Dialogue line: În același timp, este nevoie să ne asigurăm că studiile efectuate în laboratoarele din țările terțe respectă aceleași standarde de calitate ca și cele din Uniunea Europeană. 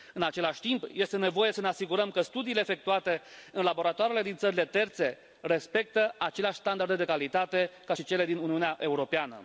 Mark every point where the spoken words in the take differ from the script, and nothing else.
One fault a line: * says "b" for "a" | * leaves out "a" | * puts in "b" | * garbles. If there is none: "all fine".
all fine